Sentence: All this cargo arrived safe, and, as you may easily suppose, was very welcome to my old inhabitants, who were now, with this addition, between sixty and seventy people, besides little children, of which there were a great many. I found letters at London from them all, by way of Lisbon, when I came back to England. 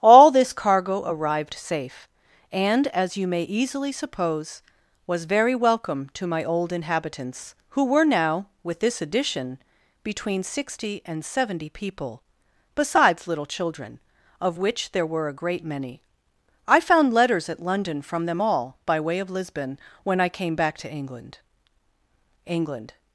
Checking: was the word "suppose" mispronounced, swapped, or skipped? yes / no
no